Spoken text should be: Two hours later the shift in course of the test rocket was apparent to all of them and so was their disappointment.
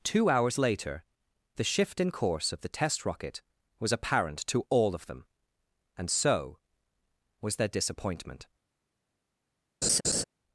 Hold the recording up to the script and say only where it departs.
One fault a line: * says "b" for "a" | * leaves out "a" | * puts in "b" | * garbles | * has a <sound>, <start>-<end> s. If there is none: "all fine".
* has a laugh, 9.8-10.2 s